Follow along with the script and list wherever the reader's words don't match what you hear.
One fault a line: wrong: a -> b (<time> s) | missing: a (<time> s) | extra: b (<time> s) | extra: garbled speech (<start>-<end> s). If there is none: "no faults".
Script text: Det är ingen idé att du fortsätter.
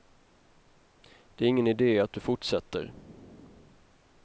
no faults